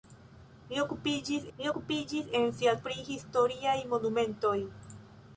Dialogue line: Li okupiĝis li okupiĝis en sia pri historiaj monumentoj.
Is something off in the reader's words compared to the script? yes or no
no